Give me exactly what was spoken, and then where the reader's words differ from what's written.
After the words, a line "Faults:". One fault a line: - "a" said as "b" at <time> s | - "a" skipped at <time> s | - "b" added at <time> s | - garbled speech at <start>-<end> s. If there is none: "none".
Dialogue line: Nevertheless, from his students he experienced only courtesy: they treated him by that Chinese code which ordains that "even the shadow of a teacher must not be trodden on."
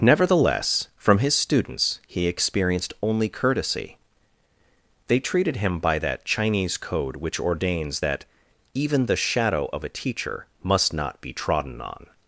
Nevertheless, from his students he experienced only courtesy: they treated him by that Chinese code which ordains that "even the shadow of a teacher must not be trodden on."
Faults:
none